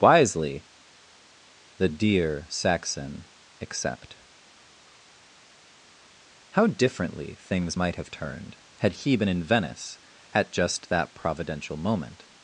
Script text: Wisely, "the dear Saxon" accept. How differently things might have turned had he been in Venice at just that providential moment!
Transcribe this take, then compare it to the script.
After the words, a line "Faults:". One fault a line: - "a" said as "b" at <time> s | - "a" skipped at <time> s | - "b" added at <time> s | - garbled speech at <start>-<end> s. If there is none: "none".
Wisely, "the dear Saxon" accept. How differently things might have turned had he been in Venice at just that providential moment!
Faults:
none